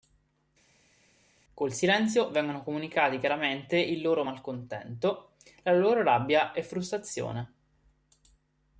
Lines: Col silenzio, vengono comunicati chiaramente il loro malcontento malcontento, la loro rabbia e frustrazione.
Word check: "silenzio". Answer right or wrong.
right